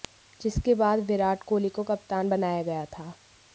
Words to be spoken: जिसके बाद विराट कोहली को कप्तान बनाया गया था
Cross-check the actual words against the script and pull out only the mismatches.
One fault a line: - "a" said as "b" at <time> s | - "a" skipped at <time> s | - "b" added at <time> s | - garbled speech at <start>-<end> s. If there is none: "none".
none